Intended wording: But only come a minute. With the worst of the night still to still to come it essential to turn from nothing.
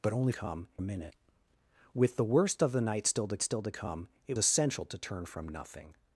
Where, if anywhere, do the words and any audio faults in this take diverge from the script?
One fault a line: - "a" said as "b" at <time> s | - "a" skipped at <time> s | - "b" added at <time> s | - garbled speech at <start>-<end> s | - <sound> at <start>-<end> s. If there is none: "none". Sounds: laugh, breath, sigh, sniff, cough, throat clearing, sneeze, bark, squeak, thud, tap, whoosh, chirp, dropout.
none